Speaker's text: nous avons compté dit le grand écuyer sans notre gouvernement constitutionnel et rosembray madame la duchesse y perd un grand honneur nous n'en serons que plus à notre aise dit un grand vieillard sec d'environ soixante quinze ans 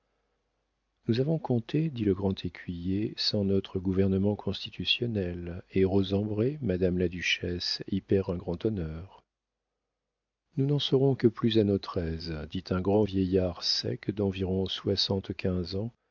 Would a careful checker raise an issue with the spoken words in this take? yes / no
no